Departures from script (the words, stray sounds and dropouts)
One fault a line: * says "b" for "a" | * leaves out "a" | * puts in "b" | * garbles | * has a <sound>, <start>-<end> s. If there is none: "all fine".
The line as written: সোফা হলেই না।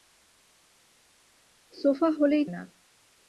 all fine